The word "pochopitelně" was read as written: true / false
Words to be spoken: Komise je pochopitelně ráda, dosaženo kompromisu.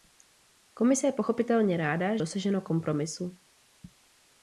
true